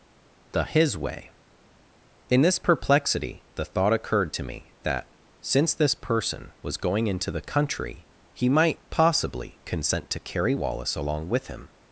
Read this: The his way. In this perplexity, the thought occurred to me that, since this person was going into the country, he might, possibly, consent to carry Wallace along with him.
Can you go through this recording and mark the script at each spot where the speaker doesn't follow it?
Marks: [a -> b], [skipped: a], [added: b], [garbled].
The his way. In this perplexity, the thought occurred to me that, since this person was going into the country, he might, possibly, consent to carry Wallace along with him.